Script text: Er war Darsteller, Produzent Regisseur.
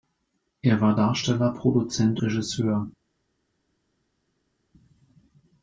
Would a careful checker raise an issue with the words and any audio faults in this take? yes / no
no